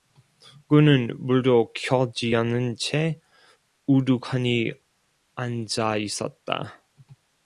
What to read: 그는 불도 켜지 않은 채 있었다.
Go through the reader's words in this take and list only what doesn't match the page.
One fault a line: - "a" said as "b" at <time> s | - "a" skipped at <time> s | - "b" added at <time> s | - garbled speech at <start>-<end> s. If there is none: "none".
- "우두커니 앉아" added at 3.8 s